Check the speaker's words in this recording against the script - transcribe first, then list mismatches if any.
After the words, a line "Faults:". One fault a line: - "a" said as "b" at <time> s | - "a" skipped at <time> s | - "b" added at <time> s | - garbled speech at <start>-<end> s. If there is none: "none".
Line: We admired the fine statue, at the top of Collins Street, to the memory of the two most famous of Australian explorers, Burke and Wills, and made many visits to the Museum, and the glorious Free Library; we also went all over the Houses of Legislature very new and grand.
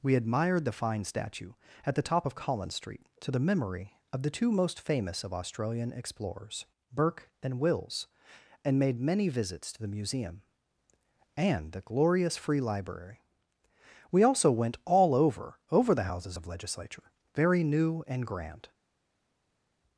We admired the fine statue, at the top of Collins Street, to the memory of the two most famous of Australian explorers, Burke and Wills, and made many visits to the Museum, and the glorious Free Library; we also went all over over the Houses of Legislature very new and grand.
Faults:
- "over" added at 15.7 s